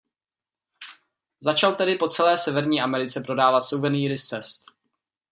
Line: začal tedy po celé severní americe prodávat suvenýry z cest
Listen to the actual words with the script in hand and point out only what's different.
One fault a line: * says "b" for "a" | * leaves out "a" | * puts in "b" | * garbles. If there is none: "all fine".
all fine